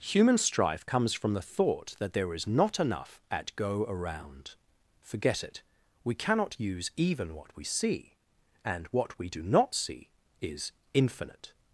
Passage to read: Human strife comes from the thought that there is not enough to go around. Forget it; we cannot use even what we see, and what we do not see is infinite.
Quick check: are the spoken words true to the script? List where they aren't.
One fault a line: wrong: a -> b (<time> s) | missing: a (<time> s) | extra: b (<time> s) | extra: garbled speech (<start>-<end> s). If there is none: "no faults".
wrong: to -> at (3.3 s)